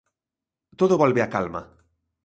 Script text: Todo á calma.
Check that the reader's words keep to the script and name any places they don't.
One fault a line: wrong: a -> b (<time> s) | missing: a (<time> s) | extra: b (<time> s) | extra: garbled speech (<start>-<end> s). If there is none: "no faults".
extra: volve (1.0 s)